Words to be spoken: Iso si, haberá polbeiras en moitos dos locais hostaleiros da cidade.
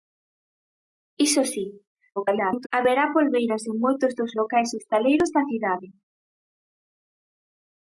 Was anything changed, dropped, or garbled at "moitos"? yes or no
no